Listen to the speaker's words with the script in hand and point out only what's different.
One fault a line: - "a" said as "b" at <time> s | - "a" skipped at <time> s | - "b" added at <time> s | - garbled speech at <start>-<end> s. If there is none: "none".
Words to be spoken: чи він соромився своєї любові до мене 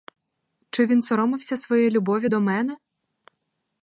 none